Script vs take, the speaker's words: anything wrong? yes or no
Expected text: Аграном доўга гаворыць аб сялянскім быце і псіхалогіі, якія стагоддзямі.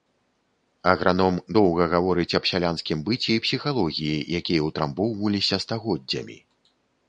yes